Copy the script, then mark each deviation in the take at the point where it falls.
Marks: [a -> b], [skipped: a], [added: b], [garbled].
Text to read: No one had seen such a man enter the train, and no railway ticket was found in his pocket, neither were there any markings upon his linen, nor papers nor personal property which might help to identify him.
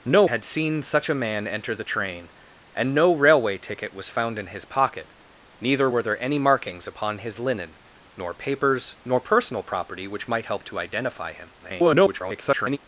No [skipped: one] had seen such a man enter the train, and no railway ticket was found in his pocket, neither were there any markings upon his linen, nor papers nor personal property which might help to identify him. [garbled]